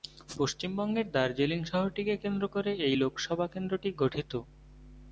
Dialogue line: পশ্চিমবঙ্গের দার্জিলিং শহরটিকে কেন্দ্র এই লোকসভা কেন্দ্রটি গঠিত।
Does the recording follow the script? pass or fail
fail